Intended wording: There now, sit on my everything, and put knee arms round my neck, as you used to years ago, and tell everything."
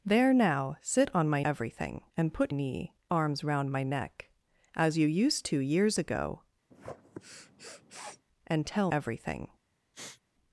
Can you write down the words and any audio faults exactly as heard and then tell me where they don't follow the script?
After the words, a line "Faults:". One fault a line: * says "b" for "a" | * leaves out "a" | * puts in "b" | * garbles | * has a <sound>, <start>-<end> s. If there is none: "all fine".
There now, sit on my everything, and put knee arms round my neck, as you used to years ago, and tell everything."
Faults:
* has a sniff, 6.7-8.3 s
* has a sniff, 9.9-10.2 s